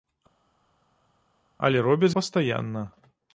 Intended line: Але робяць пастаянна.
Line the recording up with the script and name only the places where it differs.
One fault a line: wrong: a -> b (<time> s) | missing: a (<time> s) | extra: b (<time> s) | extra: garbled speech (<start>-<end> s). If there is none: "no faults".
no faults